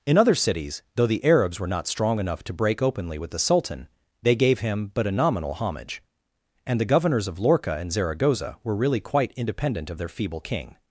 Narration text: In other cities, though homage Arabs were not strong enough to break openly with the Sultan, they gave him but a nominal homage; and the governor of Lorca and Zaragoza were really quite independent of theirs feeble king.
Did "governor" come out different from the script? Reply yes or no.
yes